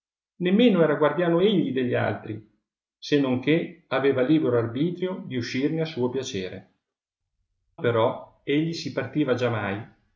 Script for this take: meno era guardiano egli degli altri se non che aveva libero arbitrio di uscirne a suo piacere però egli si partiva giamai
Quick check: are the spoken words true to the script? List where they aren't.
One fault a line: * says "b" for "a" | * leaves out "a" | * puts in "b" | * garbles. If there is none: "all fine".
all fine